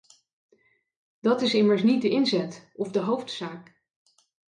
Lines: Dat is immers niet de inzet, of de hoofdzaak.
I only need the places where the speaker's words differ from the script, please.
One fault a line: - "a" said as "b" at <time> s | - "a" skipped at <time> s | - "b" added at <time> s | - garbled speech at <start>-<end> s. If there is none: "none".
none